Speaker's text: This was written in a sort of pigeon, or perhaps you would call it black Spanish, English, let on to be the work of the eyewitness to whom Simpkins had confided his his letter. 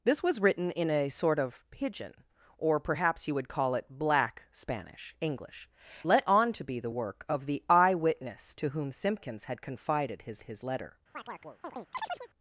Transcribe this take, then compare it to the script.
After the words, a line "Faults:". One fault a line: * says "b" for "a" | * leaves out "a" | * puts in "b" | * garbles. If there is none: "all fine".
This was written in a sort of pigeon, or perhaps you would call it black Spanish, English, let on to be the work of the eyewitness to whom Simpkins had confided his his letter.
Faults:
all fine